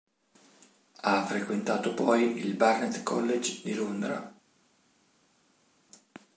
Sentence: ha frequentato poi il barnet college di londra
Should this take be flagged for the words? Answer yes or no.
no